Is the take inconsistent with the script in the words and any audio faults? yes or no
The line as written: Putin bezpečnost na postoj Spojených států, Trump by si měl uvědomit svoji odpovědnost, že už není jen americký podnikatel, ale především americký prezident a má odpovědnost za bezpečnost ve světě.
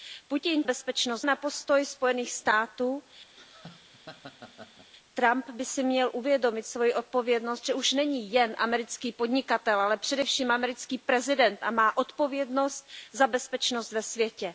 yes